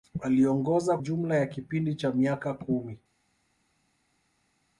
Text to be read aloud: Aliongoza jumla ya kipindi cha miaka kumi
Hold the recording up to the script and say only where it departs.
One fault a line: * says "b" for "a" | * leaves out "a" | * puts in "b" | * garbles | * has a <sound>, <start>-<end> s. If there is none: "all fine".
all fine